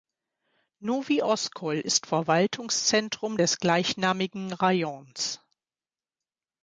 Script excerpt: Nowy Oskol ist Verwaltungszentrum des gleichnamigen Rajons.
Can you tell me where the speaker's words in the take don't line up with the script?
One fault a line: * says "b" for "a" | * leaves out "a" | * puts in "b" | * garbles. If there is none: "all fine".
all fine